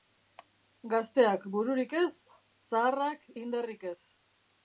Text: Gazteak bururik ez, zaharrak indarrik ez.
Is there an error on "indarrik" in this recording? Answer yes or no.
no